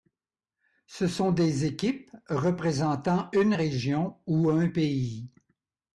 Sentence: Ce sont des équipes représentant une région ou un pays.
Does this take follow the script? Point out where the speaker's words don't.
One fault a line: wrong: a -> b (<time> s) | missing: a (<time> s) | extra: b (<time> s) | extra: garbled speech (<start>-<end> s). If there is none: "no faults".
no faults